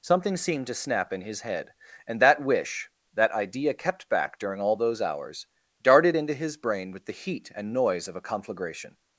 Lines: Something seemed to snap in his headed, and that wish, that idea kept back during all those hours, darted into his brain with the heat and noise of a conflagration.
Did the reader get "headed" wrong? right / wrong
wrong